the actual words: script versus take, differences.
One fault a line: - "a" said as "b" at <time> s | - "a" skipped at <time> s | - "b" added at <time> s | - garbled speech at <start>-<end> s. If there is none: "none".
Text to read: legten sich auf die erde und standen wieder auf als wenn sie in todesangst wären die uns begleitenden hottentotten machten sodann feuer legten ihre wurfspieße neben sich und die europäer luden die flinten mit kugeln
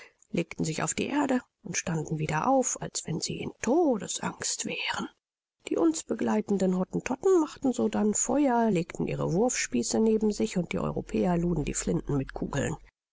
none